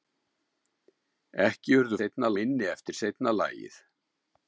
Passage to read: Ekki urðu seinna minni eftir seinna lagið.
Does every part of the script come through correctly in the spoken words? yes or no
yes